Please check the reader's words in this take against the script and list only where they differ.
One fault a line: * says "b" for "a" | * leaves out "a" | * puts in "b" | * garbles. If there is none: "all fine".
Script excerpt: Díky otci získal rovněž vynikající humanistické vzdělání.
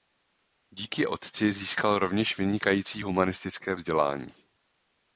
all fine